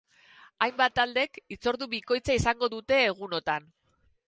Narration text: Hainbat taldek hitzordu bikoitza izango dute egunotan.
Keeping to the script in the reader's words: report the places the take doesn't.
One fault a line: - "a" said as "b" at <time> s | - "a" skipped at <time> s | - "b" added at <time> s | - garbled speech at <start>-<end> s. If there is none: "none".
none